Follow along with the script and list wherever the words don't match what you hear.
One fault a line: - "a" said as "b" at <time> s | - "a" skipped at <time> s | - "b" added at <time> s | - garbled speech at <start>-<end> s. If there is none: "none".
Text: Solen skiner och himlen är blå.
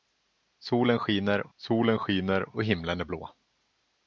- "solen skiner" added at 1.6 s